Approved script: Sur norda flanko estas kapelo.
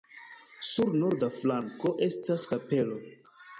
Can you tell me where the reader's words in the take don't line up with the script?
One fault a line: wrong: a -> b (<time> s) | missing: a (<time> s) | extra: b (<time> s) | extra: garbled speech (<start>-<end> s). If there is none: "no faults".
no faults